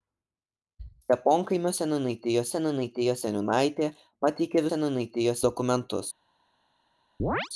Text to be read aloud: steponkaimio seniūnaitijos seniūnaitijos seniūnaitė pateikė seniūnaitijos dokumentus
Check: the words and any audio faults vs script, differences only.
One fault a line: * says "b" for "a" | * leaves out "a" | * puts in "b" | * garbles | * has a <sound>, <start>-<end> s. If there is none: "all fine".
* has a chirp, 7.2-7.5 s